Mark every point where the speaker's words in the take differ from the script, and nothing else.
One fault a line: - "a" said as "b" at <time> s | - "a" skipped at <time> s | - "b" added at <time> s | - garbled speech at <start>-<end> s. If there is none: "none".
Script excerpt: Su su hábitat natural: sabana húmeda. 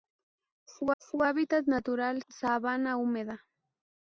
none